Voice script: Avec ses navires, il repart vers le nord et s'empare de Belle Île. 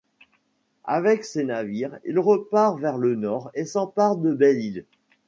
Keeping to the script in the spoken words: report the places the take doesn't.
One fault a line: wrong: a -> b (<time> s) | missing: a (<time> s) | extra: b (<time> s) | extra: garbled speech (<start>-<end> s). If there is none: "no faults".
no faults